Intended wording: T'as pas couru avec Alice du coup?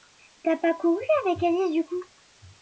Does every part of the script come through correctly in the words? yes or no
yes